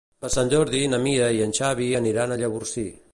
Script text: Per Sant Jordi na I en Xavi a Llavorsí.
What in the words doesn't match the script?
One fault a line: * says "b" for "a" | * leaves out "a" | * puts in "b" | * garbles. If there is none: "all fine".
* puts in "Mira"
* puts in "aniran"